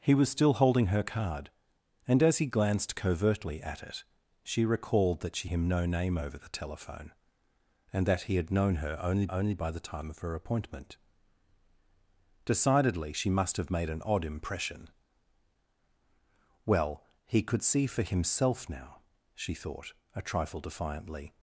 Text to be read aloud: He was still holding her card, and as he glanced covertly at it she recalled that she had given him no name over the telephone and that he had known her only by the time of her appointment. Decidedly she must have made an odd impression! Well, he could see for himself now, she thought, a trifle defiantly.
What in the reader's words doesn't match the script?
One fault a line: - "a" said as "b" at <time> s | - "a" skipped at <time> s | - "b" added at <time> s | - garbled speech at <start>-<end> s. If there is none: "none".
- "had given" skipped at 5.5 s
- "only" added at 9.3 s